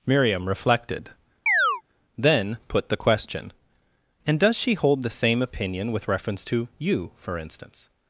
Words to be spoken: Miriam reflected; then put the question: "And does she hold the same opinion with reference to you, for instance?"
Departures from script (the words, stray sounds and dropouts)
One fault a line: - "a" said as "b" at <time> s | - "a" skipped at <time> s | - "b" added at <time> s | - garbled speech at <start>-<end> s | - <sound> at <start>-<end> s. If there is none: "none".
- chirp at 1.5-1.8 s